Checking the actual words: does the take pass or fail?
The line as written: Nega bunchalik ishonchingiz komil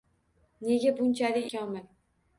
fail